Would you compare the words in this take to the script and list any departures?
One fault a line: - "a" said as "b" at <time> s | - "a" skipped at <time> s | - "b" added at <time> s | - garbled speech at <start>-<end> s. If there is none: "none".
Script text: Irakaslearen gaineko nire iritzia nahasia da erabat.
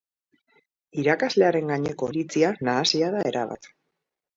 - "nire" skipped at 2.1 s